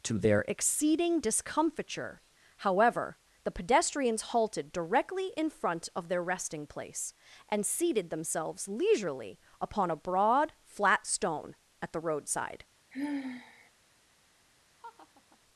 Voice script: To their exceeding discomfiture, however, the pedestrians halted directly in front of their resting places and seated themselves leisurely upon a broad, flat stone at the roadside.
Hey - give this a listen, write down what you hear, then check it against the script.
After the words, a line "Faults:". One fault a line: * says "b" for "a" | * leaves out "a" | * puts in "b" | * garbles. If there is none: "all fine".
To their exceeding discomfiture, however, the pedestrians halted directly in front of their resting place and seated themselves leisurely upon a broad, flat stone at the roadside.
Faults:
* says "place" for "places"